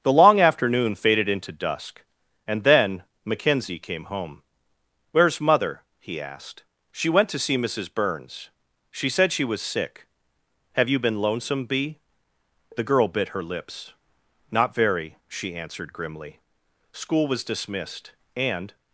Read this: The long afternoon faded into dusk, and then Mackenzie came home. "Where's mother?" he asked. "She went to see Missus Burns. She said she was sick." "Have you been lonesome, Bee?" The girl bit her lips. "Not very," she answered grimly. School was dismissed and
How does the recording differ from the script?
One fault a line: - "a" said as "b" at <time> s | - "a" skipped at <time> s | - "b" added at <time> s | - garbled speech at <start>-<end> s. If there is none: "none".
none